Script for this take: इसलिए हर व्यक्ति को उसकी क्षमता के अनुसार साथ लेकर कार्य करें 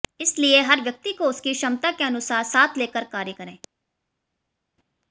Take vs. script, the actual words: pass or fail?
pass